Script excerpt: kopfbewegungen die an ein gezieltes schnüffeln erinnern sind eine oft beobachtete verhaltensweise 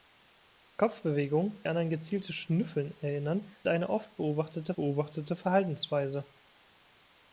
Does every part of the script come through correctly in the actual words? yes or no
no